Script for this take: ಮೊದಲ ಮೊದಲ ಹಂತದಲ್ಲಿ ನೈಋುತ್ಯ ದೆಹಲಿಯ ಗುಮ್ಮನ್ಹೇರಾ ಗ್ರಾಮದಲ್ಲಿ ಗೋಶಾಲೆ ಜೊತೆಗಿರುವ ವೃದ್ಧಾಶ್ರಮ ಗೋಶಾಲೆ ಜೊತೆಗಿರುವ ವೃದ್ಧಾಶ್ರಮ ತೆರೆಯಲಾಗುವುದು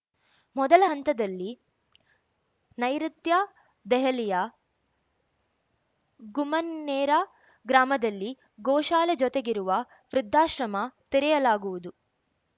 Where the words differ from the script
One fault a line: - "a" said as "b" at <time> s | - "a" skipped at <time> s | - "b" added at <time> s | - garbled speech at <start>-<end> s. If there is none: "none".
- "ಮೊದಲ" skipped at 0.8 s
- "ಗೋಶಾಲೆ ಜೊತೆಗಿರುವ ವೃದ್ಧಾಶ್ರಮ" skipped at 10.8 s